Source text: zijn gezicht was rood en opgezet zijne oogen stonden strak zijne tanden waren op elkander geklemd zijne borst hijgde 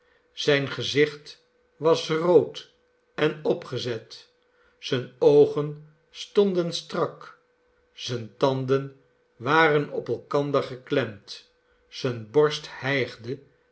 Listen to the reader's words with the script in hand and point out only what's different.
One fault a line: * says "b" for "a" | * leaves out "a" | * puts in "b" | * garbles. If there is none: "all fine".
all fine